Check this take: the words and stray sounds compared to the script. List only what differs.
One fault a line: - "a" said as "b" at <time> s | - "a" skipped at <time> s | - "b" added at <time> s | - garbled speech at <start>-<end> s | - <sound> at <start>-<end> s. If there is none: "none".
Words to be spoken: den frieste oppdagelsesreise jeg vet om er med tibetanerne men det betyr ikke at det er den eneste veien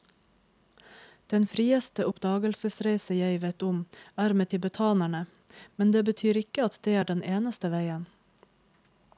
none